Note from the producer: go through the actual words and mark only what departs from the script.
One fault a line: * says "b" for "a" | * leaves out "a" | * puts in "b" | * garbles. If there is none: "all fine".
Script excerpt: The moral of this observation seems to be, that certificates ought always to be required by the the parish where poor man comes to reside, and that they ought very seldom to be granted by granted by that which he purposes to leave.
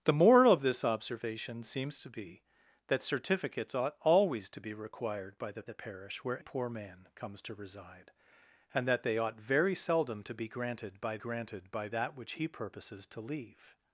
all fine